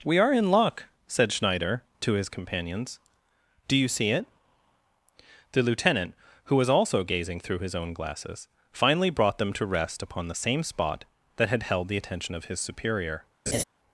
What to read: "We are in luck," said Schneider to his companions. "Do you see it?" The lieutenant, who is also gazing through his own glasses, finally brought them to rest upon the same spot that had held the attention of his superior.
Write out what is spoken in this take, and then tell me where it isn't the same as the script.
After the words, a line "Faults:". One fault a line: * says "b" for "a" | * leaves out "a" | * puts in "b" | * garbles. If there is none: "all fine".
"We are in luck," said Schneider to his companions. "Do you see it?" The lieutenant, who was also gazing through his own glasses, finally brought them to rest upon the same spot that had held the attention of his superior.
Faults:
* says "was" for "is"